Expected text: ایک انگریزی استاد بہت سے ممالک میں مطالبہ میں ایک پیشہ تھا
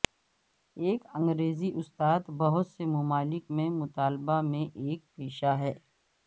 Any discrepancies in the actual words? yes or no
yes